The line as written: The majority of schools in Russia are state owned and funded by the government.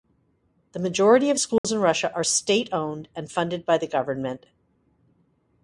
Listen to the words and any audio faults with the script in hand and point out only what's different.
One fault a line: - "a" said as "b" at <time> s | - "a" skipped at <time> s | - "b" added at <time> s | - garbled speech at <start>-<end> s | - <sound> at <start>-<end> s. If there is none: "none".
- dropout at 1.6-1.6 s